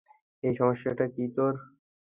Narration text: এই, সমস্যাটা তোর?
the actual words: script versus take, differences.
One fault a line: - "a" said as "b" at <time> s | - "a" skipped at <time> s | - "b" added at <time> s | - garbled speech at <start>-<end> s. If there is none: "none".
- "কী" added at 1.1 s